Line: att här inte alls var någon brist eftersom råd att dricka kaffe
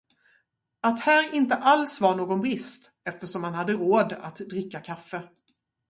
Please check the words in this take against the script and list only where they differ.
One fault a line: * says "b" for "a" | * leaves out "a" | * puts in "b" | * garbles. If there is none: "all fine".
* puts in "man hade"